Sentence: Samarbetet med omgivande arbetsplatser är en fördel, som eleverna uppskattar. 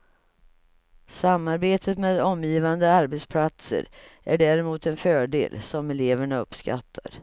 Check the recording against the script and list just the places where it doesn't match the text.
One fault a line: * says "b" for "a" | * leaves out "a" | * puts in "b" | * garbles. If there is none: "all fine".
* puts in "däremot"